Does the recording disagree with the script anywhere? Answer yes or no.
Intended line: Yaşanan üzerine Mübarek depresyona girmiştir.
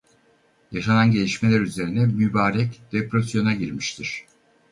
yes